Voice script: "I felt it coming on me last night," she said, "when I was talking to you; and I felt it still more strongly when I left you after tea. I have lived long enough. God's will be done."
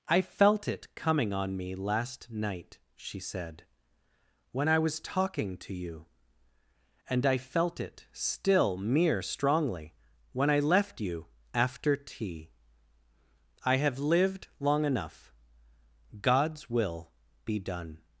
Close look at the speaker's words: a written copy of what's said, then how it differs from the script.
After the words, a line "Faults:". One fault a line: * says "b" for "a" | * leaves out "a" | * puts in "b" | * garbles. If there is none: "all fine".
"I felt it coming on me last night," she said, "when I was talking to you; and I felt it still mere strongly when I left you after tea. I have lived long enough. God's will be done."
Faults:
* says "mere" for "more"